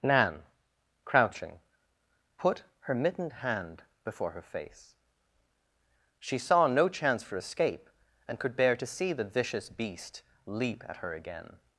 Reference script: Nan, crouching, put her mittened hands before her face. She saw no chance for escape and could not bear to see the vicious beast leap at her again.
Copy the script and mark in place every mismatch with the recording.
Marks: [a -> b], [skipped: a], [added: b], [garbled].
Nan, crouching, put her mittened [hands -> hand] before her face. She saw no chance for escape and could [skipped: not] bear to see the vicious beast leap at her again.